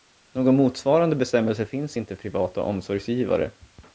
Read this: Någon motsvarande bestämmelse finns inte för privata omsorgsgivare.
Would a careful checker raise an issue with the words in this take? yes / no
yes